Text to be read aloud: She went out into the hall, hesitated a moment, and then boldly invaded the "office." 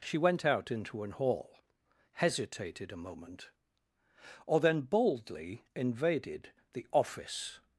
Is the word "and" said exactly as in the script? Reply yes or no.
no